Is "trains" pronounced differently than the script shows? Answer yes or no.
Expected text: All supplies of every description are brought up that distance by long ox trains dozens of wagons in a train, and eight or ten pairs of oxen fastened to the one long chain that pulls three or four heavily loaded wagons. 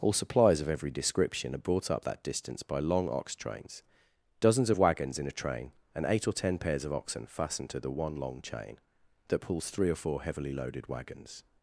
no